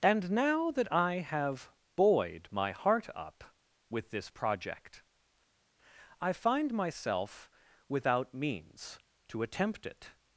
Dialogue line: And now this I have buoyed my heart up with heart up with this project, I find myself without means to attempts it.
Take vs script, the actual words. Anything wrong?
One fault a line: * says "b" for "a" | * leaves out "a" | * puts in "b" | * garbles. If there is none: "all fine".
* says "that" for "this"
* leaves out "heart up with"
* says "attempt" for "attempts"